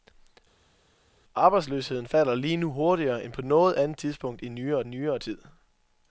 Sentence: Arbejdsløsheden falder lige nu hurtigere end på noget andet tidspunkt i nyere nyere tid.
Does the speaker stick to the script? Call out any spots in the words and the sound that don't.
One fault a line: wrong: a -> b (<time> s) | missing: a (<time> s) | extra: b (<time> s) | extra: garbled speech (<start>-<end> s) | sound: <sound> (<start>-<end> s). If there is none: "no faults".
no faults